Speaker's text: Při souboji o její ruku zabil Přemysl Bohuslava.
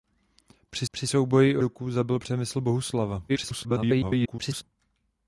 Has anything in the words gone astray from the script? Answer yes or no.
yes